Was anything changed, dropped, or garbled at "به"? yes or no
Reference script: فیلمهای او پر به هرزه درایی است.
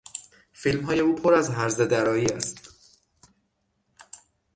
yes